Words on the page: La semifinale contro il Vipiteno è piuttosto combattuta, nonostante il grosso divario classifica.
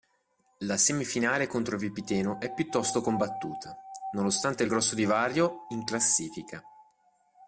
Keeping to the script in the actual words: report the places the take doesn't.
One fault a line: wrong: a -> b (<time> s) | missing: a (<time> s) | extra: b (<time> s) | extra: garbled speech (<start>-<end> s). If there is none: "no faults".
extra: in (5.7 s)